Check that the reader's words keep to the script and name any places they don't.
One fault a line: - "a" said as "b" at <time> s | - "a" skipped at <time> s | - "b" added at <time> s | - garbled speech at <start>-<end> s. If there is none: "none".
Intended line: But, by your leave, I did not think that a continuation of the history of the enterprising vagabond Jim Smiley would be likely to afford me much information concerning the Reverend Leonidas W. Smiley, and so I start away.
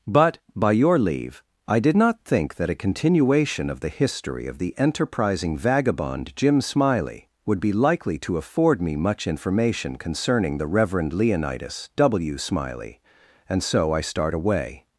none